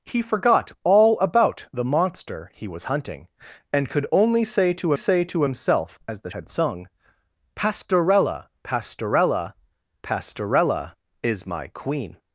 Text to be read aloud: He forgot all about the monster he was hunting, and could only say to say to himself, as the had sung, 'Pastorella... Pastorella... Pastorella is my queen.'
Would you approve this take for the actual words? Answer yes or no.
yes